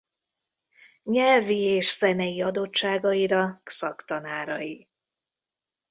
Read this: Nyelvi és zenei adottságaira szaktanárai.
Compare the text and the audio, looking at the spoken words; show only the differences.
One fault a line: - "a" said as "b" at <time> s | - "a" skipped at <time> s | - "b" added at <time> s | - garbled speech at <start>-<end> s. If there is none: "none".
none